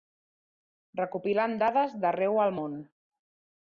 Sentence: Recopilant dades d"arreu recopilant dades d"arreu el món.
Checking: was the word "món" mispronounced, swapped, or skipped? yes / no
no